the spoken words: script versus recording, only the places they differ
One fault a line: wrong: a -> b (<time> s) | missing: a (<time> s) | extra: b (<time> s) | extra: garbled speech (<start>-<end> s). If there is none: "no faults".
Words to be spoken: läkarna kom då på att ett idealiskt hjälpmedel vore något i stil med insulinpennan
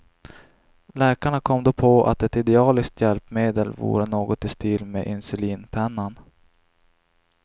no faults